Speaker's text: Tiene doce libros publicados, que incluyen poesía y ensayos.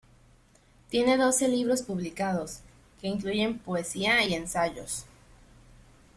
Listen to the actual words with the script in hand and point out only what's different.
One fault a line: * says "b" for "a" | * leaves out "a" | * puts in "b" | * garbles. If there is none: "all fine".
all fine